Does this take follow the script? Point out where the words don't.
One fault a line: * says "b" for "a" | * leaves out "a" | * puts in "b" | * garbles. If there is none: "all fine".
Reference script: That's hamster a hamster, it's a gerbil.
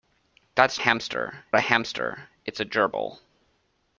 all fine